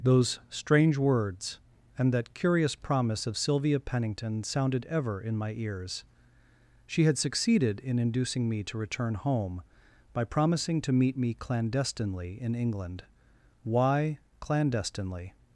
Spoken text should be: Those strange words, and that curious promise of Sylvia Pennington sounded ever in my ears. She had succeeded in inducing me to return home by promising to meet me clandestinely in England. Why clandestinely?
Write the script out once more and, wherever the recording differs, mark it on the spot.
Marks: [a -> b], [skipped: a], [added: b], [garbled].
Those strange words, and that curious promise of Sylvia Pennington sounded ever in my ears. She had succeeded in inducing me to return home by promising to meet me clandestinely in England. Why clandestinely?